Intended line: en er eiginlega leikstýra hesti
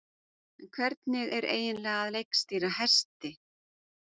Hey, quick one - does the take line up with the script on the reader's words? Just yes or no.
no